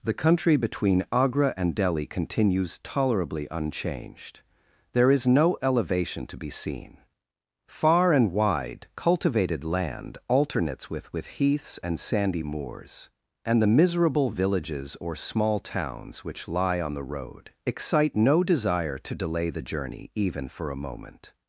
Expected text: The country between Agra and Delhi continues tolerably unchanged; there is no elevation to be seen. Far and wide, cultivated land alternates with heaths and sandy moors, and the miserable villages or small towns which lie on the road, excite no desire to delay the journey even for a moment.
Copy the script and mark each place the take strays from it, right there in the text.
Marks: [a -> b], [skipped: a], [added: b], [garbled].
The country between Agra and Delhi continues tolerably unchanged; there is no elevation to be seen. Far and wide, cultivated land alternates with [added: with] heaths and sandy moors, and the miserable villages or small towns which lie on the road, excite no desire to delay the journey even for a moment.